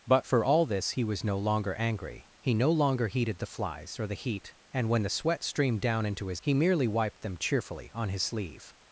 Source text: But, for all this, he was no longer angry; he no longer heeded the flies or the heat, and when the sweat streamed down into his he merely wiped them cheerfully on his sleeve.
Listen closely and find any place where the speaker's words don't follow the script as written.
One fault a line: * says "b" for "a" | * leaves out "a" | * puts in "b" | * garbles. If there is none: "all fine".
all fine